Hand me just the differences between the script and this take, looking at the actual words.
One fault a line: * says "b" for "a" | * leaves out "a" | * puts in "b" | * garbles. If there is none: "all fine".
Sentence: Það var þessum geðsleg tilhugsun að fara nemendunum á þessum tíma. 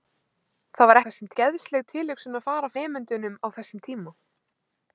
all fine